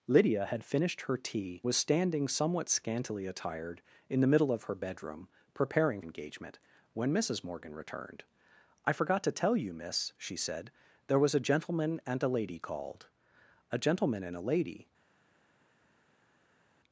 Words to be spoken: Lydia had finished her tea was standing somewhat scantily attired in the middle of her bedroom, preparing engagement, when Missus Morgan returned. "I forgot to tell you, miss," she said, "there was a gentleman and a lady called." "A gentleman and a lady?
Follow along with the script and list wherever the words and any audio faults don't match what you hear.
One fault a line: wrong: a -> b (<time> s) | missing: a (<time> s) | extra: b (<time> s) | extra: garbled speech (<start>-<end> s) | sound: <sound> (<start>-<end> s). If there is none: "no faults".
no faults